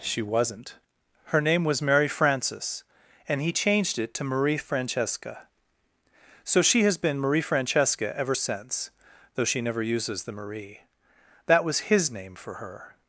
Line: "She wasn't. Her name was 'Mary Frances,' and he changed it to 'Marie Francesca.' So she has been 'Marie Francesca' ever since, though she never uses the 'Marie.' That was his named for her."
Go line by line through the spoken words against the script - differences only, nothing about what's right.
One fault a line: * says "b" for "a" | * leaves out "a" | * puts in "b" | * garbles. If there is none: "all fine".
* says "name" for "named"